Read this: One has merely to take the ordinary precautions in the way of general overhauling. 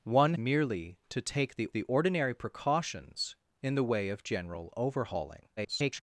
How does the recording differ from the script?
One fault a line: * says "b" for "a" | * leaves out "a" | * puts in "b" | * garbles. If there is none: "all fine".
* leaves out "has"
* puts in "the"
* garbles